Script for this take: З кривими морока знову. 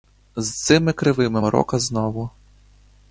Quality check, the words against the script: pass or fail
fail